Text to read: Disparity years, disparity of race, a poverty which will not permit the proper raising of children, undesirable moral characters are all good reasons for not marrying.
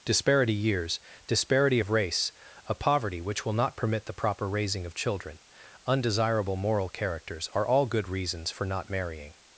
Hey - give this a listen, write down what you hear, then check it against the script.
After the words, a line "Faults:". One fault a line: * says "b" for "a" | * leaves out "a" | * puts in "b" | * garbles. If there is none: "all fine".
Disparity years, disparity of race, a poverty which will not permit the proper raising of children, undesirable moral characters are all good reasons for not marrying.
Faults:
all fine